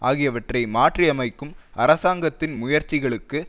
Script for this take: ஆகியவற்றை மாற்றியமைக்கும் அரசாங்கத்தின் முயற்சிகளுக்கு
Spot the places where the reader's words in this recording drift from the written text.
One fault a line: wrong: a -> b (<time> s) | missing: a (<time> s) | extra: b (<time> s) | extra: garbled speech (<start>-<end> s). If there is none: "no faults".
no faults